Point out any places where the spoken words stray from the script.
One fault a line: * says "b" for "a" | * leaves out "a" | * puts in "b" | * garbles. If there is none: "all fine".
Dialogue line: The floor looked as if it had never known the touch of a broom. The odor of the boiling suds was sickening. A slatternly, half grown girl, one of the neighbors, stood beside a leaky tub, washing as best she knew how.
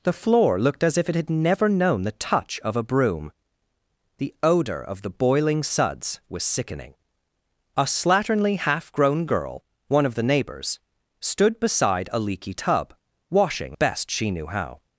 * leaves out "as"